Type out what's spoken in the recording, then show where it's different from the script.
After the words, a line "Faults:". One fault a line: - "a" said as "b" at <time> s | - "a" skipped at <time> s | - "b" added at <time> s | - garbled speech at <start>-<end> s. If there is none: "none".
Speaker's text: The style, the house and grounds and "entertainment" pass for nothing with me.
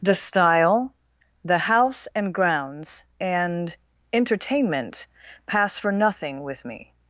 The style, the house and grounds and "entertainment" pass for nothing with me.
Faults:
none